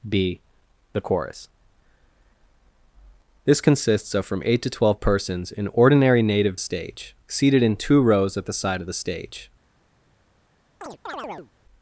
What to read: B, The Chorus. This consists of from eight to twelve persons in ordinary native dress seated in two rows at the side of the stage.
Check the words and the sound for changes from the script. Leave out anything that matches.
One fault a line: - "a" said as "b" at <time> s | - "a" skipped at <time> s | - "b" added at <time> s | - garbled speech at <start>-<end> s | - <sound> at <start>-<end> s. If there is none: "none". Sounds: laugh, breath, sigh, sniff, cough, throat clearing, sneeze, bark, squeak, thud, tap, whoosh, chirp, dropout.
- "dress" said as "stage" at 6.6 s
- chirp at 10.8-11.5 s